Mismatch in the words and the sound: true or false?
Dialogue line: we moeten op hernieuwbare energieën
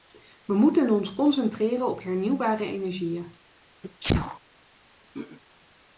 true